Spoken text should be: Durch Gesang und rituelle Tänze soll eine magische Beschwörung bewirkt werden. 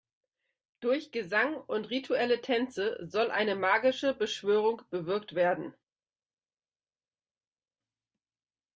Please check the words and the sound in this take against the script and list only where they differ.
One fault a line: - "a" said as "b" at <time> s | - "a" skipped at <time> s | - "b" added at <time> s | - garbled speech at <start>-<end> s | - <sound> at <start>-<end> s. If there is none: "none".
none